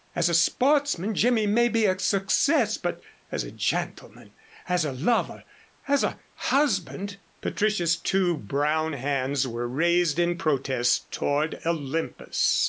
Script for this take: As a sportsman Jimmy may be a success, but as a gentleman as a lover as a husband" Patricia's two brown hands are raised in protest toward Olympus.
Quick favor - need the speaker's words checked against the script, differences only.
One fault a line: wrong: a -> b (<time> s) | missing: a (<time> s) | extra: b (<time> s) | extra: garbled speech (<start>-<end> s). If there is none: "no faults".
wrong: are -> were (9.5 s)